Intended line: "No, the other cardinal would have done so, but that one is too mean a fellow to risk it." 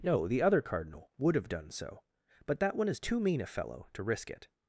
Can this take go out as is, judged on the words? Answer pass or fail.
pass